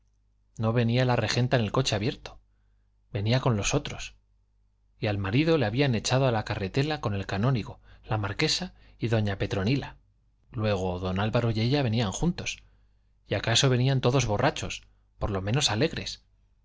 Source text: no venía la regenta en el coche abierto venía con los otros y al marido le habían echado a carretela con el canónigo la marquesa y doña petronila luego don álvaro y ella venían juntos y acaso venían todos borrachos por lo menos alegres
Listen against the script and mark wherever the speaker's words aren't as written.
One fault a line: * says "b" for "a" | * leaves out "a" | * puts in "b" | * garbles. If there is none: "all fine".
* puts in "la"